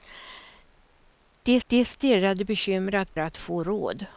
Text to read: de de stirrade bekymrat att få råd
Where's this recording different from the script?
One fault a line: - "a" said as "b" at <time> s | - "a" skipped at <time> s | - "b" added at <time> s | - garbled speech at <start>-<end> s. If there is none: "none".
none